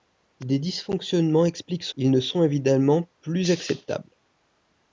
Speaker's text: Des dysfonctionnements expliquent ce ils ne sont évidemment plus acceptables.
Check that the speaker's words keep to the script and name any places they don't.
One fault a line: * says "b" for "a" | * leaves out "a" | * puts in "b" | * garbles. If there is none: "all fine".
all fine